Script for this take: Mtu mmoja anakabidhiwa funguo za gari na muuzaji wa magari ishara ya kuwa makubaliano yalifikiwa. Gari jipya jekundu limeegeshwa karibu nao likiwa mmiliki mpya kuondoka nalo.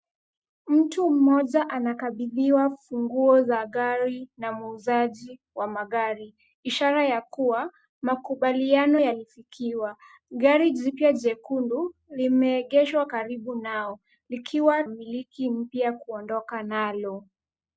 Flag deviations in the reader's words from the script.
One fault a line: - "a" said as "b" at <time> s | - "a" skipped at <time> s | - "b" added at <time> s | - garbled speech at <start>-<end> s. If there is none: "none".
none